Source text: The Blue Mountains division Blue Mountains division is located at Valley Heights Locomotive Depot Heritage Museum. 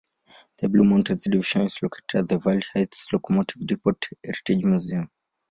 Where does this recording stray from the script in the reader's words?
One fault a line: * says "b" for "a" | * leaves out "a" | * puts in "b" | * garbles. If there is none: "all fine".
* leaves out "Blue Mountains division"
* puts in "the"